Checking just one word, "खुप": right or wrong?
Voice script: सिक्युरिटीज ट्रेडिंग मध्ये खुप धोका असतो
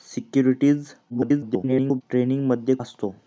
wrong